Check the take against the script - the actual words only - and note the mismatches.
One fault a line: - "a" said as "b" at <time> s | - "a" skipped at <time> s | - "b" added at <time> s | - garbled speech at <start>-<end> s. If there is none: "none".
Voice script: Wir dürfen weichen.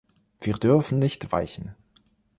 - "nicht" added at 1.0 s